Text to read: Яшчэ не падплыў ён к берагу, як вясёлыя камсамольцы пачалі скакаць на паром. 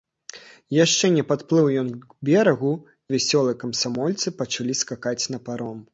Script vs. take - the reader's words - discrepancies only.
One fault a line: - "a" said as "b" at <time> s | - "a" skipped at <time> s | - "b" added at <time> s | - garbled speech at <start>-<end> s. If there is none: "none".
- "як" skipped at 2.7 s